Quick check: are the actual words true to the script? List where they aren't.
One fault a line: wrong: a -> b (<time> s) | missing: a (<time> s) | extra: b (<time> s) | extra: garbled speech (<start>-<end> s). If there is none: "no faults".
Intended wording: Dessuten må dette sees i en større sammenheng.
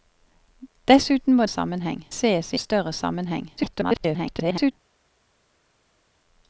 wrong: dette -> sammenheng (1.5 s)
missing: en (2.6 s)
extra: garbled speech (3.6-4.7 s)